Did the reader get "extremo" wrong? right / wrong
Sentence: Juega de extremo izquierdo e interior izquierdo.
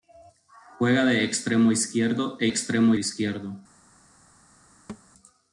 right